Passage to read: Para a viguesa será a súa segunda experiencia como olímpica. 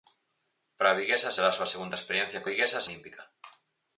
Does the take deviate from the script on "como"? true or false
true